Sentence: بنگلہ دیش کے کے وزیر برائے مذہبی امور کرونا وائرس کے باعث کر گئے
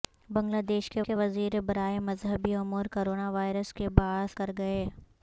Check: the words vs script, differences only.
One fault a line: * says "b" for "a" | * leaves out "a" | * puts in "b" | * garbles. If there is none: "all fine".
all fine